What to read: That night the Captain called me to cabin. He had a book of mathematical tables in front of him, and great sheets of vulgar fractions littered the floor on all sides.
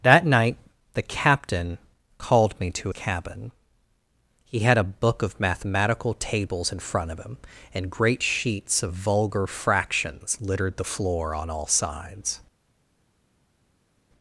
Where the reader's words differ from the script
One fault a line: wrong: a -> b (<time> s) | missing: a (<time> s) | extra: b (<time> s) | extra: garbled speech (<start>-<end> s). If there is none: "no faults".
no faults